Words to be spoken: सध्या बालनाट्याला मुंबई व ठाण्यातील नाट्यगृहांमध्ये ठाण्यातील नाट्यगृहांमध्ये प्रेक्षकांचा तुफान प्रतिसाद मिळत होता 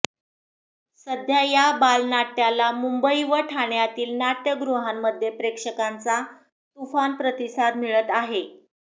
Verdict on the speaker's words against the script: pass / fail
fail